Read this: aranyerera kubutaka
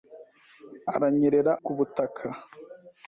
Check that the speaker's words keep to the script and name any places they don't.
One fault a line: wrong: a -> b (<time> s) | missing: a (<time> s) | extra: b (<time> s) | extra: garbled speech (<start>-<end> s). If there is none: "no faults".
no faults